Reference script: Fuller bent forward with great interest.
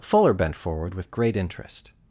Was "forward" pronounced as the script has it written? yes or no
yes